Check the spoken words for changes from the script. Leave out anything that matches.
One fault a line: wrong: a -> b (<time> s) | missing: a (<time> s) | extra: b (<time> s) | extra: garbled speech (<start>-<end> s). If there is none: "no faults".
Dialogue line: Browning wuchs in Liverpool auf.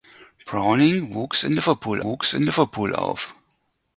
extra: wuchs in Liverpool (2.0 s)